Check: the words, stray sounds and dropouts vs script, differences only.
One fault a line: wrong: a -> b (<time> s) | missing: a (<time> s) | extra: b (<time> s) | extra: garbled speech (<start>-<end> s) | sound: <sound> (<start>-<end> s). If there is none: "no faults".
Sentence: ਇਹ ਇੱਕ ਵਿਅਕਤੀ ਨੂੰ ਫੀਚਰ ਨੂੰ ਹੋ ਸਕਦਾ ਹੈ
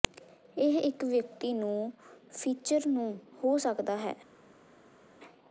no faults